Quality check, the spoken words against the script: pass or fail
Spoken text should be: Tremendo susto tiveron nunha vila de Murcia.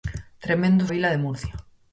fail